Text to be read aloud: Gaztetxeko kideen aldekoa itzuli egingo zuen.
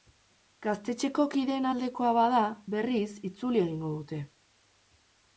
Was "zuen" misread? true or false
true